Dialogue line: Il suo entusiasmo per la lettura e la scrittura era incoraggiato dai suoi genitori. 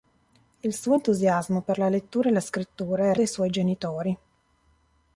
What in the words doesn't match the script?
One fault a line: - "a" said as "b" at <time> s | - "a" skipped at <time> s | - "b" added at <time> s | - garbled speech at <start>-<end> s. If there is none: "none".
- "incoraggiato" skipped at 3.2 s